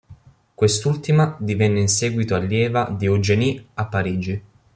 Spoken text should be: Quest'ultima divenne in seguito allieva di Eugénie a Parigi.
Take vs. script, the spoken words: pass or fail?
pass